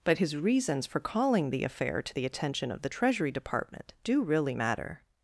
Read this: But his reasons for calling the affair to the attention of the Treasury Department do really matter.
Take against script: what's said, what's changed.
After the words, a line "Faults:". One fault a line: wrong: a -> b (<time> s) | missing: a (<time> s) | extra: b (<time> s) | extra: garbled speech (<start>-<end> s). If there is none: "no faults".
But his reasons for calling the affair to the attention of the Treasury Department do really matter.
Faults:
no faults